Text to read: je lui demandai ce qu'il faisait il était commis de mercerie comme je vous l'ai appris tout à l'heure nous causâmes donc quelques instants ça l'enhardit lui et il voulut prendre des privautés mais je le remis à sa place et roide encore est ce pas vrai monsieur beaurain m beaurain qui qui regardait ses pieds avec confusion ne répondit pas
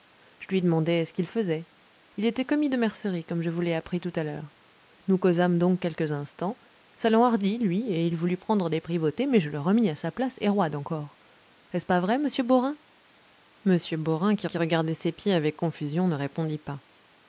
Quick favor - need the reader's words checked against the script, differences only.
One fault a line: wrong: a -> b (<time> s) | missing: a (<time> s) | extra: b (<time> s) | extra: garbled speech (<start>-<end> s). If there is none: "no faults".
no faults